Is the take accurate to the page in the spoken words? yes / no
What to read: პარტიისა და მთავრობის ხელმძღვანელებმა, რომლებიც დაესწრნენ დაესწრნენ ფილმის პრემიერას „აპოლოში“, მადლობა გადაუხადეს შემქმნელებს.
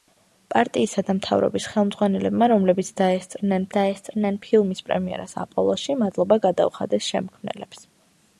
yes